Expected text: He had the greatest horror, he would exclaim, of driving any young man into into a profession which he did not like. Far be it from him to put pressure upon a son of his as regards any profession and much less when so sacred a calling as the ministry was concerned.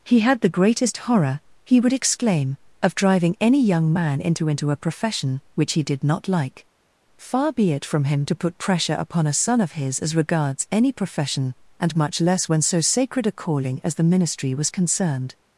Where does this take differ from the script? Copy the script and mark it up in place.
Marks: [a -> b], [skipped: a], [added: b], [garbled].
He had the greatest horror, he would exclaim, of driving any young man into into a profession which he did not like. Far be it from him to put pressure upon a son of his as regards any profession and much less when so sacred a calling as the ministry was concerned.